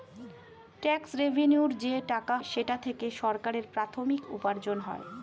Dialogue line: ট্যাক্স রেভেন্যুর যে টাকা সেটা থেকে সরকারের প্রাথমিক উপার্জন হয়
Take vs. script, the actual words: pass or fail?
pass